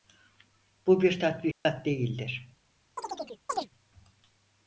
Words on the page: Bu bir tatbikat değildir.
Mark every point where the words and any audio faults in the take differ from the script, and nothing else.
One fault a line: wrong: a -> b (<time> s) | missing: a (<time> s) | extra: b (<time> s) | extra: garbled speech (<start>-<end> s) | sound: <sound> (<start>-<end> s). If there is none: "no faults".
sound: dropout (1.5-1.7 s)
sound: chirp (3.0-3.7 s)